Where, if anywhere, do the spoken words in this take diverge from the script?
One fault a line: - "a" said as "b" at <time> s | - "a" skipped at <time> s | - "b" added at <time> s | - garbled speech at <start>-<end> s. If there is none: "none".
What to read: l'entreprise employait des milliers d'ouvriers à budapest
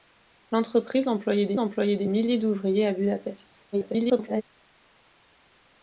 - "employait des" added at 1.6 s
- garbled speech at 3.7-4.4 s